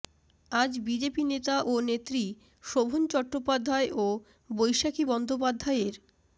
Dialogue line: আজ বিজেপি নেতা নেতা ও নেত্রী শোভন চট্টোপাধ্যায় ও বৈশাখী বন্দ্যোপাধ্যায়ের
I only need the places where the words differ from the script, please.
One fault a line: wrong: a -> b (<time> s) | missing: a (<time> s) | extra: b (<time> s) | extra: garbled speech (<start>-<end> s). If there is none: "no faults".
missing: নেতা (1.6 s)